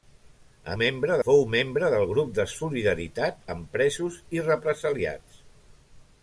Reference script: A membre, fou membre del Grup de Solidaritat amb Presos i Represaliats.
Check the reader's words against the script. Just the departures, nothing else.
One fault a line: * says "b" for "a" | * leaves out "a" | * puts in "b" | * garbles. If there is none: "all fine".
all fine